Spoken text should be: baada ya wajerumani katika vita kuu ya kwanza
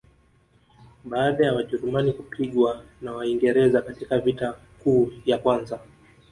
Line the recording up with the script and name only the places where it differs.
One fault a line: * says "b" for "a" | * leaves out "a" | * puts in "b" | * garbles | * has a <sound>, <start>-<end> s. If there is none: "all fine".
* puts in "kupigwa na waingereza"